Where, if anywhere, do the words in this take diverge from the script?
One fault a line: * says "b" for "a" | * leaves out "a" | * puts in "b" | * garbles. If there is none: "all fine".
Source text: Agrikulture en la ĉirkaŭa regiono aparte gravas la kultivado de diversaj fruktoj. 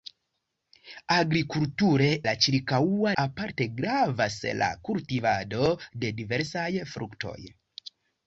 * leaves out "en"
* leaves out "regiono"